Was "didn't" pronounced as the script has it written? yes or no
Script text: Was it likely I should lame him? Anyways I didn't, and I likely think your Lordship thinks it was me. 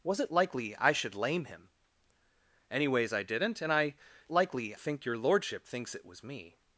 yes